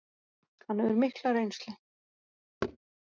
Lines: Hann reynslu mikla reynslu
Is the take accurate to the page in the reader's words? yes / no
no